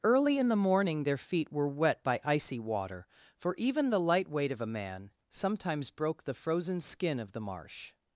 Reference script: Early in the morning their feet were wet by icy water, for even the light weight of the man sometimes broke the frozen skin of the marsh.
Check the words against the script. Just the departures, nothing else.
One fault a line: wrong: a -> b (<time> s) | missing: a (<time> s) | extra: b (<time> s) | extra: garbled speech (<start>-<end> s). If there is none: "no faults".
wrong: the -> a (4.6 s)